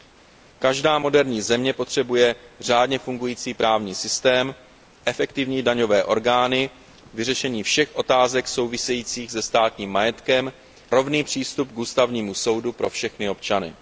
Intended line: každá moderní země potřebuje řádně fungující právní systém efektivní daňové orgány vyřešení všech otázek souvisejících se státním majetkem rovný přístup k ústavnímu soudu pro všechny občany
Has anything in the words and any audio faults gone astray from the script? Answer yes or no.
no